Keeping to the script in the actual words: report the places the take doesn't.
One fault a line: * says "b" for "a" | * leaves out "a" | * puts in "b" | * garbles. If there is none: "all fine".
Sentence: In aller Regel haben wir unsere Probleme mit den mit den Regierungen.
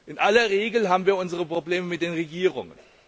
* leaves out "mit den"